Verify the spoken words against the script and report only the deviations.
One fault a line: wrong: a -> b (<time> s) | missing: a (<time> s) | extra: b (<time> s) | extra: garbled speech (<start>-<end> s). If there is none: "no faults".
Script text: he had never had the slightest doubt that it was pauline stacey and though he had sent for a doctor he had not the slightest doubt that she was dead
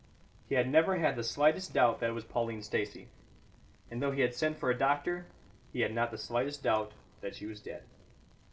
no faults